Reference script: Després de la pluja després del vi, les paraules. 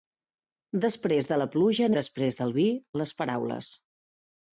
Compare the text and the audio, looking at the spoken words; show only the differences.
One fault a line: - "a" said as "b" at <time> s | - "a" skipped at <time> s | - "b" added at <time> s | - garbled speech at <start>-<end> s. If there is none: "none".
none